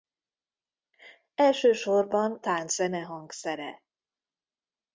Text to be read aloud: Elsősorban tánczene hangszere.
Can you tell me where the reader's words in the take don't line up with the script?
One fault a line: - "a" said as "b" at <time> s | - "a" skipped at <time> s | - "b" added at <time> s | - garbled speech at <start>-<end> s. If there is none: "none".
none